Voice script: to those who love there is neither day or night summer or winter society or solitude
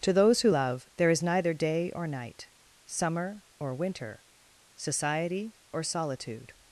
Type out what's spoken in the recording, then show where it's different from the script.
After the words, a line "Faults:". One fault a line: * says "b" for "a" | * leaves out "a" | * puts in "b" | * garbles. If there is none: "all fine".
to those who love there is neither day or night summer or winter society or solitude
Faults:
all fine